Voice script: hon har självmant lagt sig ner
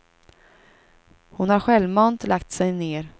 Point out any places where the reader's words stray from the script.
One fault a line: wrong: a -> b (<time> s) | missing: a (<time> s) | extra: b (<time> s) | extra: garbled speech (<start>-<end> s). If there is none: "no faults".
no faults